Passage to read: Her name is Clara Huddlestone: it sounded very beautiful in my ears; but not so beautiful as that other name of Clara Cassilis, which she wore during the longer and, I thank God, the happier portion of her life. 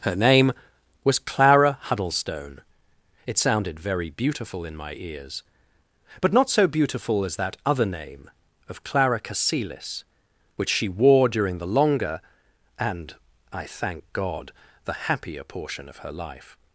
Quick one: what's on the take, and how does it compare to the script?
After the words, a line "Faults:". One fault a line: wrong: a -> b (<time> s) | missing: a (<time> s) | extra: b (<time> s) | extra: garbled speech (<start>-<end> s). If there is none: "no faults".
Her name was Clara Huddlestone: it sounded very beautiful in my ears; but not so beautiful as that other name of Clara Cassilis, which she wore during the longer and, I thank God, the happier portion of her life.
Faults:
wrong: is -> was (1.0 s)